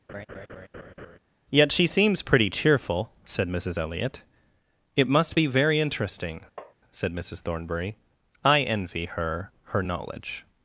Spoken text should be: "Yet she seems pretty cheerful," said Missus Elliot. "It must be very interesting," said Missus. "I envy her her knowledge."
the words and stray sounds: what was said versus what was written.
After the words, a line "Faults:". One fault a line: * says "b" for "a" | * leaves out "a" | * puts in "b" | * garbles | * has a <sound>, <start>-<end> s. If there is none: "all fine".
"Yet she seems pretty cheerful," said Missus Elliot. "It must be very interesting," said Missus Thornbury. "I envy her her knowledge."
Faults:
* has a laugh, 0.1-1.2 s
* has a tap, 6.6-6.7 s
* puts in "Thornbury"